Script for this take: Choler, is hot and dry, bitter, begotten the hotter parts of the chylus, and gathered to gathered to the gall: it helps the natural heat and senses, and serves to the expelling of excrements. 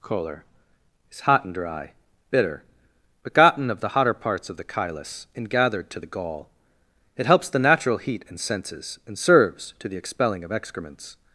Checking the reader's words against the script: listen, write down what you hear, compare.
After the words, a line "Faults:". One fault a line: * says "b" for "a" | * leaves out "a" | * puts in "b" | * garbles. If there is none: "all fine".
Choler, is hot and dry, bitter, begotten of the hotter parts of the chylus, and gathered to the gall: it helps the natural heat and senses, and serves to the expelling of excrements.
Faults:
* puts in "of"
* leaves out "gathered to"